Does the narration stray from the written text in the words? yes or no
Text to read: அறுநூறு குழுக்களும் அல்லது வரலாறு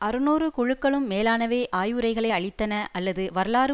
yes